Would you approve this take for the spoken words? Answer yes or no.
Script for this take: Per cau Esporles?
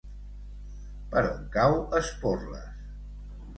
no